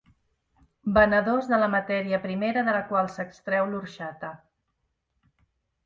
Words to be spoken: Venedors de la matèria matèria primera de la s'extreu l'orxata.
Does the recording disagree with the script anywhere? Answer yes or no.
yes